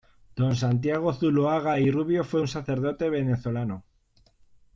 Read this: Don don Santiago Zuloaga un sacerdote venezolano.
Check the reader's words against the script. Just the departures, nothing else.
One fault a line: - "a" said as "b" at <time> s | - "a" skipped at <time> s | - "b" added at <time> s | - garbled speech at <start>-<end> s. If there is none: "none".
- "don" skipped at 0.6 s
- "y Rubio fue" added at 1.8 s